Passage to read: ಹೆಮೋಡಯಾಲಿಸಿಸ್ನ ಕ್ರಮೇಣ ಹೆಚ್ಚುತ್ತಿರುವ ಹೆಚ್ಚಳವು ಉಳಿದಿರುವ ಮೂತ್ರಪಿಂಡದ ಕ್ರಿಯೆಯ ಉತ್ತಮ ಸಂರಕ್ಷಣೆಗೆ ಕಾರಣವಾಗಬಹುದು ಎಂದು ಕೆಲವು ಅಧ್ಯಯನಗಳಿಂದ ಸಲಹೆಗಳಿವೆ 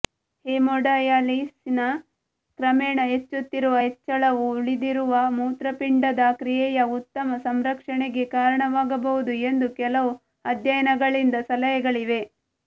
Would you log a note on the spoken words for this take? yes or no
no